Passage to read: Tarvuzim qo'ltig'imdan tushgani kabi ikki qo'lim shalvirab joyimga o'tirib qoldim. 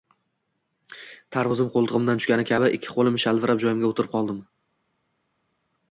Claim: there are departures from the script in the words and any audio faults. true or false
false